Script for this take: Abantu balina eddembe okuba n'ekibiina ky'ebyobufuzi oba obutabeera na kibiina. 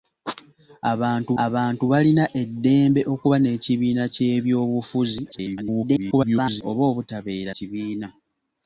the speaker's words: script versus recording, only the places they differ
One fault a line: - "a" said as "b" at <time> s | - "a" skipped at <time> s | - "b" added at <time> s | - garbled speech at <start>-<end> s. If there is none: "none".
- "abantu" added at 1.4 s
- garbled speech at 5.3-6.6 s
- "na" skipped at 7.5 s